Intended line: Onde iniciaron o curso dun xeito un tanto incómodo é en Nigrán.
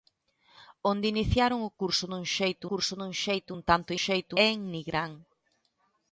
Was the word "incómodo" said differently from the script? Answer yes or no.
yes